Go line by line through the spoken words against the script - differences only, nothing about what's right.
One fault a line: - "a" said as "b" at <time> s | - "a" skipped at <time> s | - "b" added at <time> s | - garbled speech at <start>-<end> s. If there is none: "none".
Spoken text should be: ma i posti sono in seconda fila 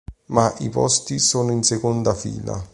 none